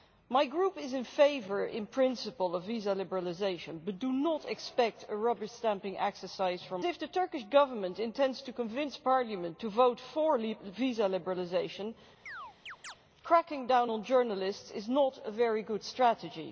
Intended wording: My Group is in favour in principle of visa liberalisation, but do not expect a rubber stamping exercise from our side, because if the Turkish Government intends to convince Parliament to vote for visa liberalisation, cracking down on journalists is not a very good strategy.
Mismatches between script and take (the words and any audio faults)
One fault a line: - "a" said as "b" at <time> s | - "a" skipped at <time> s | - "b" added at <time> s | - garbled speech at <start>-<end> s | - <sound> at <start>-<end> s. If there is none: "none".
- "our side because" skipped at 6.8 s
- chirp at 12.3-13.0 s